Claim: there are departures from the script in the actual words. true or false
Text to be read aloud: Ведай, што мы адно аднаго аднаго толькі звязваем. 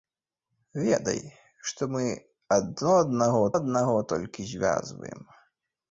false